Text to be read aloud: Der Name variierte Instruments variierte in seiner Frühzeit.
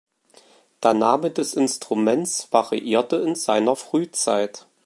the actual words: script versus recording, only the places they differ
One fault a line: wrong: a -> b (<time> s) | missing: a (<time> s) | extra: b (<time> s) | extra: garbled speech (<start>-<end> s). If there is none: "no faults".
wrong: variierte -> des (1.3 s)